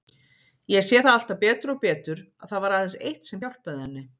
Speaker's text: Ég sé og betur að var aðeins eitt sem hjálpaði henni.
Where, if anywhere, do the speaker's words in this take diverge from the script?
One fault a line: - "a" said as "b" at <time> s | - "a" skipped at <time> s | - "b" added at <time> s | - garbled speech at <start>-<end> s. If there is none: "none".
- "það alltaf betur" added at 1.0 s
- "það" added at 2.5 s